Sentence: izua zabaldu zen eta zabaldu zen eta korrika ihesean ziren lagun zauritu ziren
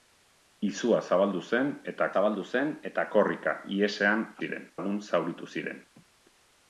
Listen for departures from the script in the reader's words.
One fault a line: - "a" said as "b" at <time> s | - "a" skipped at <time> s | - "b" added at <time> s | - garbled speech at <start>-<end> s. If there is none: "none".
none